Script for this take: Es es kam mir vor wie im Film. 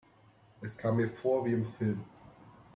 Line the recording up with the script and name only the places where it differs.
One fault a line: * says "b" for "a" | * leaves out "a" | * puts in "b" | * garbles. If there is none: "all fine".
* leaves out "es"